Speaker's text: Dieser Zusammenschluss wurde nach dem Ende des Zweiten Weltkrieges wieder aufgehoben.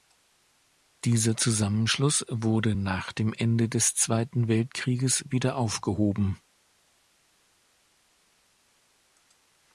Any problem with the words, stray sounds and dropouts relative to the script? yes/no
no